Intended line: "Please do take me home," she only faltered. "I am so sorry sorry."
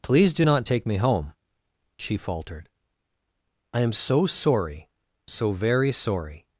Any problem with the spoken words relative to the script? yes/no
yes